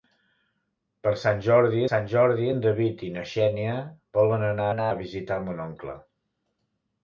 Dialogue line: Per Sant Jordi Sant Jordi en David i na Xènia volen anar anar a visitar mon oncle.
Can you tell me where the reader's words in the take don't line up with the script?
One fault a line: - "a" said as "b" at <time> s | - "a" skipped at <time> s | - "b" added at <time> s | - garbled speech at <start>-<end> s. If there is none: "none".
none